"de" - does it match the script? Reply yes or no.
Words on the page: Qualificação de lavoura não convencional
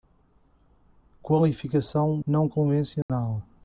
no